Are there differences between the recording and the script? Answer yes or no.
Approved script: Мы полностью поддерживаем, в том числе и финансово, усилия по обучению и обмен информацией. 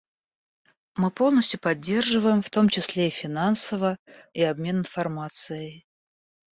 yes